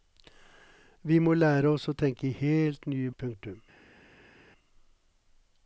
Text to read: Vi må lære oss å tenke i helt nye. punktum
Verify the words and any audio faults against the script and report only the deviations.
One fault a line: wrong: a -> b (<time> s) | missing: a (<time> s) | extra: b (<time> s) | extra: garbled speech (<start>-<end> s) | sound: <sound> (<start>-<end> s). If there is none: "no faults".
no faults